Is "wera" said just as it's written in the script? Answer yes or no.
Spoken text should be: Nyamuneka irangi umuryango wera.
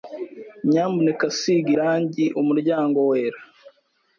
yes